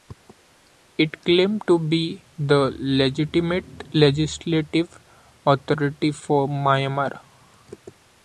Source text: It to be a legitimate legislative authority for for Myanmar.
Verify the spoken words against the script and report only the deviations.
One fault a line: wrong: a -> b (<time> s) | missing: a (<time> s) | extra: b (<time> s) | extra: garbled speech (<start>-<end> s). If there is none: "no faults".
extra: claimed (1.2 s)
wrong: a -> the (2.4 s)
missing: for (6.5 s)